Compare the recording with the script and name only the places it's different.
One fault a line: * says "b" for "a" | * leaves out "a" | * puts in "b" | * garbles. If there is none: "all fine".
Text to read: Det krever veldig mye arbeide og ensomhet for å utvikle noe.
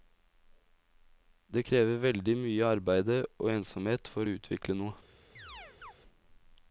all fine